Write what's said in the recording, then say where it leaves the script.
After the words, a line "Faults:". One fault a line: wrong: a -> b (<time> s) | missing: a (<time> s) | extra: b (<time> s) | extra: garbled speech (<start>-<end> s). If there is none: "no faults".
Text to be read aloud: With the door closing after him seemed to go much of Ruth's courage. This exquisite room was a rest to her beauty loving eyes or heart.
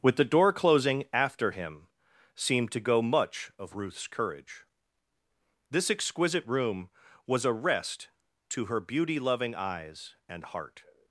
With the door closing after him seemed to go much of Ruth's courage. This exquisite room was a rest to her beauty loving eyes and heart.
Faults:
wrong: or -> and (10.3 s)